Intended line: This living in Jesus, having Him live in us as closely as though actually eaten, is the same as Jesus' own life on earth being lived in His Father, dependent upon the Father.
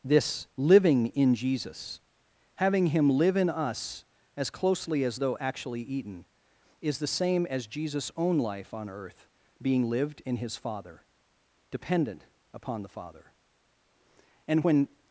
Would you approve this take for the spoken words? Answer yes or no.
no